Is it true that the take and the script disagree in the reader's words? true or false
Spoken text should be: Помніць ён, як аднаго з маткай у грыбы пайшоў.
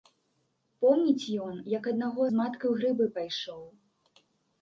false